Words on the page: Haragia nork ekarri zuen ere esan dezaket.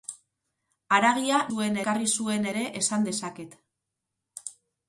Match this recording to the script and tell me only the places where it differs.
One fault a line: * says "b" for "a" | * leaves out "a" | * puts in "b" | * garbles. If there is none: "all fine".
* says "zuen" for "nork"